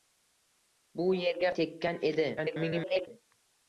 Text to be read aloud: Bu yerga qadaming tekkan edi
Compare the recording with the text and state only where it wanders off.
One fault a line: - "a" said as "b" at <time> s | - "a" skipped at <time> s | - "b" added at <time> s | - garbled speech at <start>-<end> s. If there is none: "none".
- "qadaming" skipped at 1.5 s
- garbled speech at 2.4-3.1 s